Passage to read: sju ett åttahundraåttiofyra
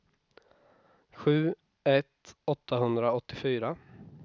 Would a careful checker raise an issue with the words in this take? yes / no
no